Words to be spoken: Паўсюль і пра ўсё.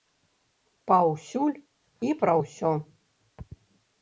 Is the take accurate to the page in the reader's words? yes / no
yes